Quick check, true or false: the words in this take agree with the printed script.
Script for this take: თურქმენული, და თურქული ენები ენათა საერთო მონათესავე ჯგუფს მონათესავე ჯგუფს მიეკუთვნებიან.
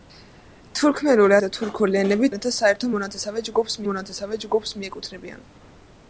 true